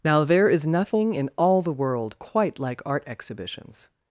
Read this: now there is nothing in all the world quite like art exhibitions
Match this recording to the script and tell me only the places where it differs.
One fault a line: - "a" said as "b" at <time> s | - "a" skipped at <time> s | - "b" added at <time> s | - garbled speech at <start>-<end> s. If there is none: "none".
none